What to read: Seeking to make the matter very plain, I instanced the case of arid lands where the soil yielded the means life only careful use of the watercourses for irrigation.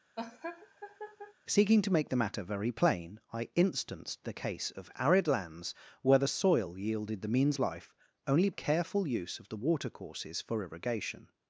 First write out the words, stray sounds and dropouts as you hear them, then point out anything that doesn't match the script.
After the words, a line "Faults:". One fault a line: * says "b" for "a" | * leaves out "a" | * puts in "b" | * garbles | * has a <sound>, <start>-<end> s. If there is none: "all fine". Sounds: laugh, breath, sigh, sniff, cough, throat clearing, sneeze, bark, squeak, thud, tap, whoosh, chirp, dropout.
Seeking to make the matter very plain, I instanced the case of arid lands where the soil yielded the means life only careful use of the watercourses for irrigation.
Faults:
* has a laugh, 0.2-1.3 s